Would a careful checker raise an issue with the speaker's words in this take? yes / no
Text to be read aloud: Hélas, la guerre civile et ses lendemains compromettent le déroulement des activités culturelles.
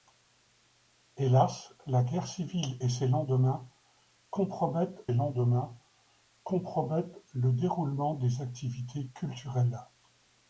yes